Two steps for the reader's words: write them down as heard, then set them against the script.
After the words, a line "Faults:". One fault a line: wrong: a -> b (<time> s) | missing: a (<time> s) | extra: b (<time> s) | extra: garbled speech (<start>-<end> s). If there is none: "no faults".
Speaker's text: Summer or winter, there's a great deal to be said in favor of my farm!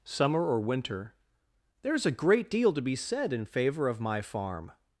Summer or winter, there's a great deal to be said in favor of my farm!
Faults:
no faults